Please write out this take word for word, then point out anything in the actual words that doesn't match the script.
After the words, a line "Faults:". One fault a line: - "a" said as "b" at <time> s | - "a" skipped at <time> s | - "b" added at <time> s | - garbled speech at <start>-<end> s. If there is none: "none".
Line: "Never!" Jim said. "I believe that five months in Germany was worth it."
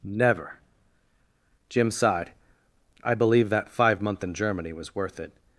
"Never!" Jim sighed. "I believe that five month in Germany was worth it."
Faults:
- "said" said as "sighed" at 1.9 s
- "months" said as "month" at 4.0 s